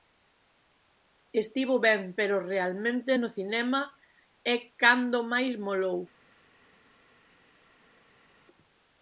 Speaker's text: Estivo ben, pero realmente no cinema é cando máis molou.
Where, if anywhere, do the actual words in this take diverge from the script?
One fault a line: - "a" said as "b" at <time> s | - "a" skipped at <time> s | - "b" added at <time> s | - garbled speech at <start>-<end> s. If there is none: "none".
none